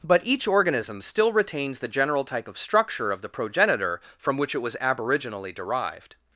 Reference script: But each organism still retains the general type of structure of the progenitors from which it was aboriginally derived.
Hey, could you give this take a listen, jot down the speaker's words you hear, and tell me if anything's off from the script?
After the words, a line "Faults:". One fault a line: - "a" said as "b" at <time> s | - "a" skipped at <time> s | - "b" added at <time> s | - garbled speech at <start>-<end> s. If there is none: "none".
But each organism still retains the general type of structure of the progenitor from which it was aboriginally derived.
Faults:
- "progenitors" said as "progenitor" at 3.3 s